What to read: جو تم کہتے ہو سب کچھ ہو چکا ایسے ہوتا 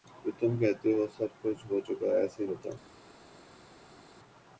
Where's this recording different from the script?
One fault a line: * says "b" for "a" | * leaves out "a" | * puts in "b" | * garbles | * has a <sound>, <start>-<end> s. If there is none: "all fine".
all fine